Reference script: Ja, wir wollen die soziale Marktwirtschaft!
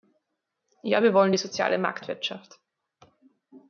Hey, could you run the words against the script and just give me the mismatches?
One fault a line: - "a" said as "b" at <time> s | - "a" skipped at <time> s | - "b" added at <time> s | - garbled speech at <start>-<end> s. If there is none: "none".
none